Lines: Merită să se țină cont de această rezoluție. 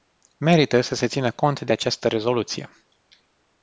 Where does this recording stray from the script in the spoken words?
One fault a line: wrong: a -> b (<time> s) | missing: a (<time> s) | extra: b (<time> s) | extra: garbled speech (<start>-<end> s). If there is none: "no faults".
no faults